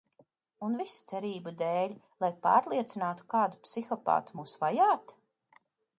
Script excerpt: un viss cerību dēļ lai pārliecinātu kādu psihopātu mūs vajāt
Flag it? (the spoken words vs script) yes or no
no